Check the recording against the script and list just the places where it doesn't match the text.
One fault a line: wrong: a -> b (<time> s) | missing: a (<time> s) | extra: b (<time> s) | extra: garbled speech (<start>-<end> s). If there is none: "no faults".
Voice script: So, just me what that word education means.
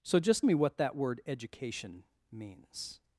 no faults